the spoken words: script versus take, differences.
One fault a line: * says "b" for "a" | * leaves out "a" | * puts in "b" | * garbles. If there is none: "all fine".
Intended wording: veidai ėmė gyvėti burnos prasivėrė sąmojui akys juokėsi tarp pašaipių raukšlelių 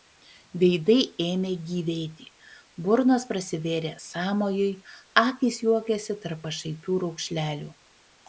all fine